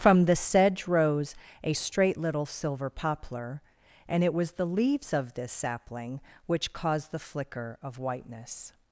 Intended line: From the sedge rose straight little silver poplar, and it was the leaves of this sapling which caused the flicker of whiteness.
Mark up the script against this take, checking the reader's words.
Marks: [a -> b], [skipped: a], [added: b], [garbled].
From the sedge rose [added: a] straight little silver poplar, and it was the leaves of this sapling which caused the flicker of whiteness.